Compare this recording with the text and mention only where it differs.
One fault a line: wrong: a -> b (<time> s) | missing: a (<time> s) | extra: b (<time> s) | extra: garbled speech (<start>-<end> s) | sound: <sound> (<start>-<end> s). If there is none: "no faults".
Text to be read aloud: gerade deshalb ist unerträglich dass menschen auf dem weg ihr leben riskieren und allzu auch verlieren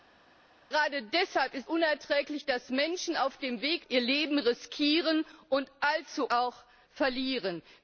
no faults